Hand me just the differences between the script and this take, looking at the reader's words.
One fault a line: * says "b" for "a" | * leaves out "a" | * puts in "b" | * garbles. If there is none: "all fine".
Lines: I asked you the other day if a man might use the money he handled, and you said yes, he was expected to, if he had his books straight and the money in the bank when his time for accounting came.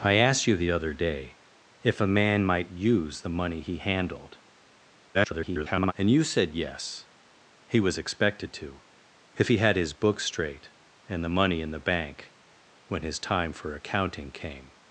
* garbles